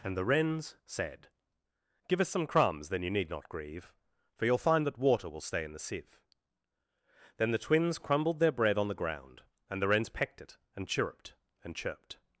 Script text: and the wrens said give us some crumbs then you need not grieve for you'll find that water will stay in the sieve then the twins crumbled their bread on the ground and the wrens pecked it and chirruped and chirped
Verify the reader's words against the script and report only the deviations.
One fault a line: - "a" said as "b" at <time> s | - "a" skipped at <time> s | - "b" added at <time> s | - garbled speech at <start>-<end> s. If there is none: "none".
none